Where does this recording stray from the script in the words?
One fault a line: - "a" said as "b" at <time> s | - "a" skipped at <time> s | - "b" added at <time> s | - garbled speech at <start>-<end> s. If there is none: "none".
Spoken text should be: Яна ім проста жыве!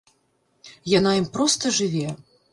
none